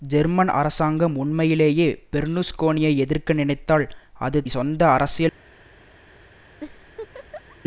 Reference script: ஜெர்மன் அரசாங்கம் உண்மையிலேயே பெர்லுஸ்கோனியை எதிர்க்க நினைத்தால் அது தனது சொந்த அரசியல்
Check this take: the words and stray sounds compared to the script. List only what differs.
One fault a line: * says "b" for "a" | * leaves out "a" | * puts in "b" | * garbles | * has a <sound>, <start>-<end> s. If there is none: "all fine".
* leaves out "தனது"
* has a laugh, 6.6-7.6 s